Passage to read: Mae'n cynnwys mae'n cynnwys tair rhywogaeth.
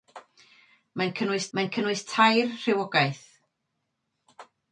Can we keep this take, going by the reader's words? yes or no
yes